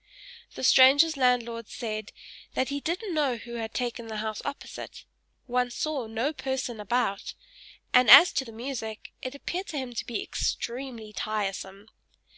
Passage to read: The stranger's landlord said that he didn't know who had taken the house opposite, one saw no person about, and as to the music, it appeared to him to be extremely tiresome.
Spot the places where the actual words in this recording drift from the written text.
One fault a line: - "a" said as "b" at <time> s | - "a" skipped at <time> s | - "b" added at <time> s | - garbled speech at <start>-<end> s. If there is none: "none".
none